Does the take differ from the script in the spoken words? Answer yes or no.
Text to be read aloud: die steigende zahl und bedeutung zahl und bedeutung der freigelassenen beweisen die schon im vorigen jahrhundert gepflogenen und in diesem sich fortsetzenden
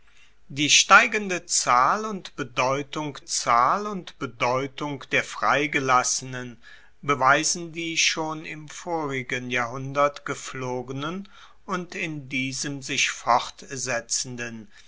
no